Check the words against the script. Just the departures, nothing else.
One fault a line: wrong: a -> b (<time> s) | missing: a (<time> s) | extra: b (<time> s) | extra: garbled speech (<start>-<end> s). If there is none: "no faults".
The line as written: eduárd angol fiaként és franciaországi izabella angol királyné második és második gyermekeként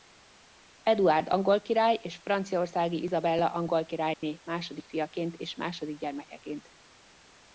wrong: fiaként -> király (1.6 s)
extra: fiaként (4.9 s)